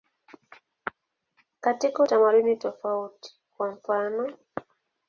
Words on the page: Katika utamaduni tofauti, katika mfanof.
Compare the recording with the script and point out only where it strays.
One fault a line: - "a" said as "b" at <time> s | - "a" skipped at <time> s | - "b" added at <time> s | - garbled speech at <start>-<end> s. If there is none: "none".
- "katika" said as "kwa" at 3.6 s